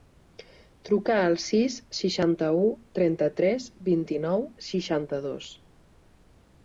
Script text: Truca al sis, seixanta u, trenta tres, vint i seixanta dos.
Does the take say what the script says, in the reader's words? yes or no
no